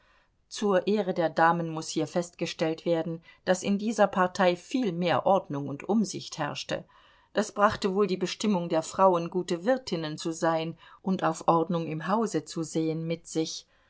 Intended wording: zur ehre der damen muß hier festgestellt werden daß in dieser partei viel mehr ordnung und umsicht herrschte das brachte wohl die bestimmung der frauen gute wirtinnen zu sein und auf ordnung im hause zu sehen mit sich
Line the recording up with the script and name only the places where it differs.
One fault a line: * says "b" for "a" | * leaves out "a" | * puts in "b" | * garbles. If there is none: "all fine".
all fine